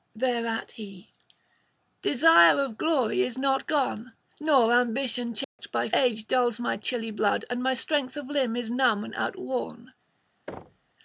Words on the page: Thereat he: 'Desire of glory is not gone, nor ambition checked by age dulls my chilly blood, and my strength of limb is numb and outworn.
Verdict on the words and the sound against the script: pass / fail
fail